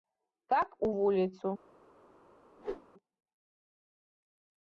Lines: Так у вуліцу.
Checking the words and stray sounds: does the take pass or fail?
fail